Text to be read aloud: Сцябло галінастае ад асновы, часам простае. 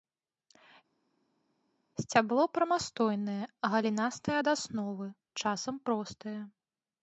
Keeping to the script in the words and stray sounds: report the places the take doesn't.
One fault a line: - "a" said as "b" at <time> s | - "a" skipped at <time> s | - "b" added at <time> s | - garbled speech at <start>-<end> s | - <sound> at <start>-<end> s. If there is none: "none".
- "прамастойнае" added at 2.6 s